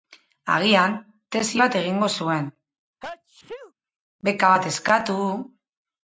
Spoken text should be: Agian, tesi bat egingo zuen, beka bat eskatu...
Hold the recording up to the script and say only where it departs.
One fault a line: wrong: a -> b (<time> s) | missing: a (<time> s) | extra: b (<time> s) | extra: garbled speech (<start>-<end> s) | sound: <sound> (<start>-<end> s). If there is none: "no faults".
sound: sneeze (3.0-3.7 s)